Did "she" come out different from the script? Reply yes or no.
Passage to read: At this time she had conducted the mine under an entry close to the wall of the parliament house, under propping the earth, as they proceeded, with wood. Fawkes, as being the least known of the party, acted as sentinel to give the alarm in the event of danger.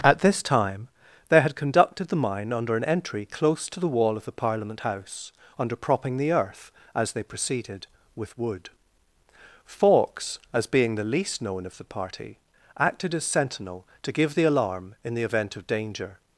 yes